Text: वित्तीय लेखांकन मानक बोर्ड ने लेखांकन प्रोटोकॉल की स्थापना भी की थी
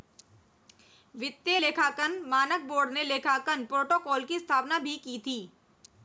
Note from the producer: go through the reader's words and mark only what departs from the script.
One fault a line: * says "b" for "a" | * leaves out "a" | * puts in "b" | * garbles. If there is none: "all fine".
all fine